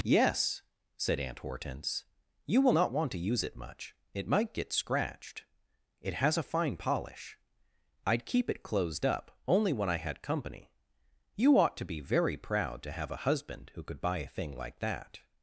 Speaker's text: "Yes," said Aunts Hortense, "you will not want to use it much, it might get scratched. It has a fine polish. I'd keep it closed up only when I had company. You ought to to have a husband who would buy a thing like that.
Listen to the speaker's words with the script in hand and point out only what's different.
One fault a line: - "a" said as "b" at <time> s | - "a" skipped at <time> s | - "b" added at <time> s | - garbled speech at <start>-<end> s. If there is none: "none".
- "Aunts" said as "Aunt" at 1.2 s
- "be very proud" added at 11.8 s
- "would" said as "could" at 13.8 s